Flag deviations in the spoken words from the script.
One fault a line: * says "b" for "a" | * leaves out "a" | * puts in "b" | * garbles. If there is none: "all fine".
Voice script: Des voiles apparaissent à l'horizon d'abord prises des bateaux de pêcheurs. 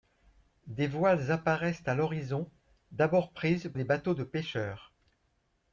all fine